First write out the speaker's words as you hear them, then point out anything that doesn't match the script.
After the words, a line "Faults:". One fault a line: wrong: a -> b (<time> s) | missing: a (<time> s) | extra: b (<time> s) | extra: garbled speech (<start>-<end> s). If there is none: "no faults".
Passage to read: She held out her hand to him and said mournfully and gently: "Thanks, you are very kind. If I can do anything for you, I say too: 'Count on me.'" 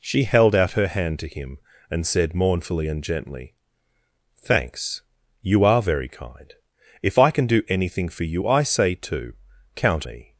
She held out her hand to him and said mournfully and gently: "Thanks, you are very kind. If I can do anything for you, I say too: 'Count me.'"
Faults:
missing: on (10.1 s)